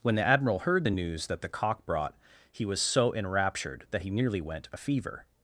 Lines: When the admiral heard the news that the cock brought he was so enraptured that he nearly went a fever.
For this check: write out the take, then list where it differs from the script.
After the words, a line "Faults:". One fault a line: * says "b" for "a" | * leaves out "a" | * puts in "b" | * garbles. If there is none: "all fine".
When the admiral heard the news that the cock brought he was so enraptured that he nearly went a fever.
Faults:
all fine